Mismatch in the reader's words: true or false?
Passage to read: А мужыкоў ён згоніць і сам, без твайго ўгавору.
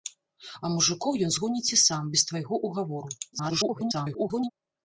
true